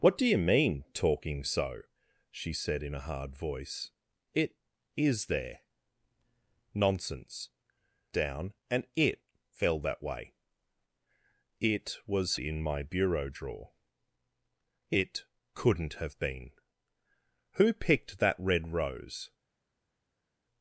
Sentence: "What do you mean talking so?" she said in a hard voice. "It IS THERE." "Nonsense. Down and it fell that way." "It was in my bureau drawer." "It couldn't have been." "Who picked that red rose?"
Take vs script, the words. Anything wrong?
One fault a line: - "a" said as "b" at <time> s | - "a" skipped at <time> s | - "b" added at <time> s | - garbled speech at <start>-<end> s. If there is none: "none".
none